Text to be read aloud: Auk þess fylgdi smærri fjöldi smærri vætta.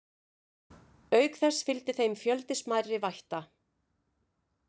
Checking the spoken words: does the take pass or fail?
fail